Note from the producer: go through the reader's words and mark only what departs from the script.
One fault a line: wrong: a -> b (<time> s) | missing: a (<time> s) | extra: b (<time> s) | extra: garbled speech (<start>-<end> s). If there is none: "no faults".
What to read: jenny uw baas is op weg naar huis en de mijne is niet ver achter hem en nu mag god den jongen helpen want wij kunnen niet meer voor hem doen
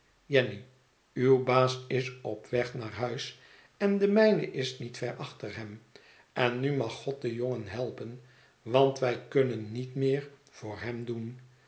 no faults